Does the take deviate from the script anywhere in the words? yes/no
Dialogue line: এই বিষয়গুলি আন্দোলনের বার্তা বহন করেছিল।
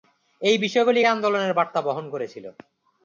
no